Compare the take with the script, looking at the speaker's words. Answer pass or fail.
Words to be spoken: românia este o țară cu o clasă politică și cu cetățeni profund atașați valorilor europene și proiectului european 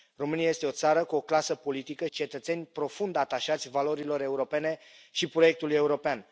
fail